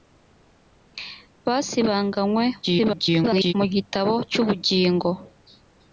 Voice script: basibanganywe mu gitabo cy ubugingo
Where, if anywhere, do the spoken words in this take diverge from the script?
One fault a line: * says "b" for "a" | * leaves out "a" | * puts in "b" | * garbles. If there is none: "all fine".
* garbles